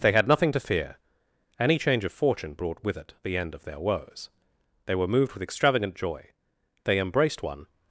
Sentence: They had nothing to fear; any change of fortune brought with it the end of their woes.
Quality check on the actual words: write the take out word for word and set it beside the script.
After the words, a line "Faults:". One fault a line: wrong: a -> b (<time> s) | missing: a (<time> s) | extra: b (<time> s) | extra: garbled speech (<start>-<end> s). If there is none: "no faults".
They had nothing to fear; any change of fortune brought with it the end of their woes. They were moved with extravagant joy, they embraced one
Faults:
extra: They were moved with extravagant joy they embraced one (4.9 s)